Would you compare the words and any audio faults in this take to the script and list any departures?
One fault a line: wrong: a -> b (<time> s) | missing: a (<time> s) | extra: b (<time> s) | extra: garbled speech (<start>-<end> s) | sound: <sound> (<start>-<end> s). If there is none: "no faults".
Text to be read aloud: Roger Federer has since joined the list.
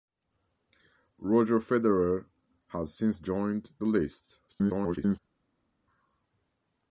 extra: garbled speech (4.5-5.2 s)